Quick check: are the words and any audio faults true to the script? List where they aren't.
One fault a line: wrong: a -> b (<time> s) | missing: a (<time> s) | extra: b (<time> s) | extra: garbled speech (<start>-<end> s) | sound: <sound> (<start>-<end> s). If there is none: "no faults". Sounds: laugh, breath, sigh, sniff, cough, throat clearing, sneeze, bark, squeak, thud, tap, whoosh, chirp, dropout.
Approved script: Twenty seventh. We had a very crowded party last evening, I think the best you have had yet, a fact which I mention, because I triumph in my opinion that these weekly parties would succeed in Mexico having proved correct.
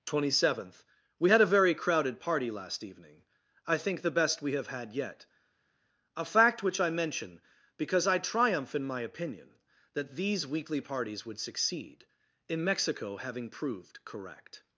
wrong: you -> we (4.4 s)